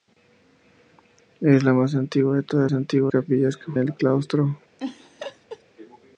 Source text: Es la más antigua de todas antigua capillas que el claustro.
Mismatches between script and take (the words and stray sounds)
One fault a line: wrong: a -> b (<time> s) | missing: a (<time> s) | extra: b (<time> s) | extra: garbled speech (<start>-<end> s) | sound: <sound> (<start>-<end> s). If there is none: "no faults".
sound: laugh (4.8-5.6 s)